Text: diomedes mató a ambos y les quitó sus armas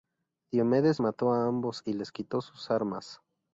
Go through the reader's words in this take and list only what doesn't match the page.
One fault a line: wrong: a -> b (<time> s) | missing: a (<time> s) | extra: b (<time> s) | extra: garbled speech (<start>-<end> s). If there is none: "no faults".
no faults